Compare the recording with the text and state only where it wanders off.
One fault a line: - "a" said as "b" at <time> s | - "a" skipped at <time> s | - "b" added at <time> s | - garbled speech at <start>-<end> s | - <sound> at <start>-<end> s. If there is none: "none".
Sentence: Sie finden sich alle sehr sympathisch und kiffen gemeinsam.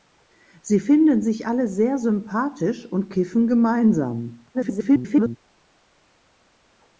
- garbled speech at 4.5-5.4 s